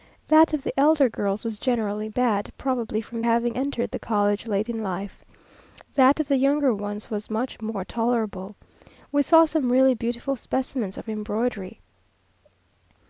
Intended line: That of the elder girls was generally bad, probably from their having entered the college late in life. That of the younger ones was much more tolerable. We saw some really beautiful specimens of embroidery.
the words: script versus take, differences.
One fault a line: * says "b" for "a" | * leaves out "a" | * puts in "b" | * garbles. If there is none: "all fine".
* leaves out "their"